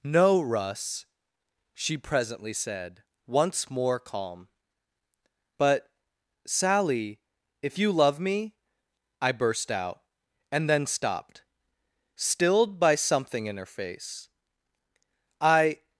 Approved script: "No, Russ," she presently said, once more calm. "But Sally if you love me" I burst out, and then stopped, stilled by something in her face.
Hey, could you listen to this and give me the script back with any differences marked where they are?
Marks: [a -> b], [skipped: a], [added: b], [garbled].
"No, Russ," she presently said, once more calm. "But Sally if you love me" I burst out, and then stopped, stilled by something in her face. [added: I]